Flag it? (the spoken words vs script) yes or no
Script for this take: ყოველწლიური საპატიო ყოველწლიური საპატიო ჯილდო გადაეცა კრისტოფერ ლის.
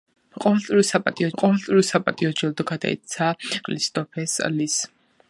no